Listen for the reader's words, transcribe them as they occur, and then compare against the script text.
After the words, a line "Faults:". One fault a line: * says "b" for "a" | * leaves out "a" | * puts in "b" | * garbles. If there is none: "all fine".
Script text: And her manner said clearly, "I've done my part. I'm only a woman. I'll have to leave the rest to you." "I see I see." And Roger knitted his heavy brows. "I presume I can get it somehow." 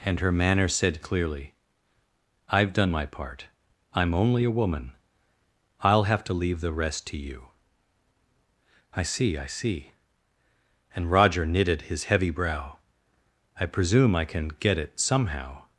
And her manner said clearly, "I've done my part. I'm only a woman. I'll have to leave the rest to you." "I see I see." And Roger knitted his heavy brow. "I presume I can get it somehow."
Faults:
* says "brow" for "brows"